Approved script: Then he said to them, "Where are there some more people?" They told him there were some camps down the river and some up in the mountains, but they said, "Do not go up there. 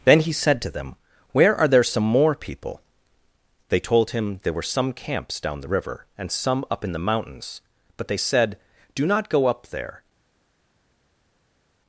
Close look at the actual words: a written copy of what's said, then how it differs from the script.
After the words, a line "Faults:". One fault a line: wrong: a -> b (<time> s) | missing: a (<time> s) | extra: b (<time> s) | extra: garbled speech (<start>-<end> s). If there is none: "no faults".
Then he said to them, "Where are there some more people?" They told him there were some camps down the river and some up in the mountains, but they said, "Do not go up there.
Faults:
no faults